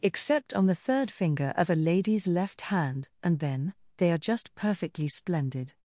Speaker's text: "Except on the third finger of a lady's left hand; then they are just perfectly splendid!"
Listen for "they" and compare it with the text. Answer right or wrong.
right